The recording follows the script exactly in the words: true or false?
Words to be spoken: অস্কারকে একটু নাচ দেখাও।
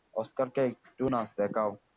true